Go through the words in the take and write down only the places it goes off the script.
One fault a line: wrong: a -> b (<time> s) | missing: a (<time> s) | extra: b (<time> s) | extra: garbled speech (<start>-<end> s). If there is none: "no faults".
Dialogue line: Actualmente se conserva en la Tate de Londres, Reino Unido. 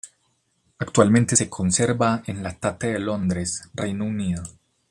no faults